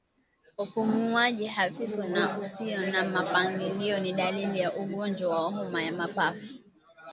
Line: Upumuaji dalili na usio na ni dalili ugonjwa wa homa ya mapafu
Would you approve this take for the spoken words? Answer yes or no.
no